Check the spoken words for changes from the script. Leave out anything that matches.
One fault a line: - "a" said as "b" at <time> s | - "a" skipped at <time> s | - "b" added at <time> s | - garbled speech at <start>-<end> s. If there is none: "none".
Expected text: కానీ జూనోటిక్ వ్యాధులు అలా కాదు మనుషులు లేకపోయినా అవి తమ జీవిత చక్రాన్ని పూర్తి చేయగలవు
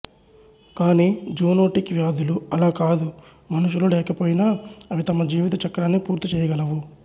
none